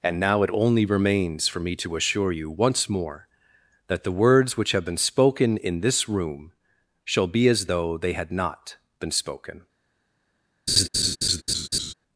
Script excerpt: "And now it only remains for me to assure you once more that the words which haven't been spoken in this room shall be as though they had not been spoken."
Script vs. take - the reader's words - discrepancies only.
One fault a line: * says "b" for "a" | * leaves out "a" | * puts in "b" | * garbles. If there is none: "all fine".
* says "have" for "haven't"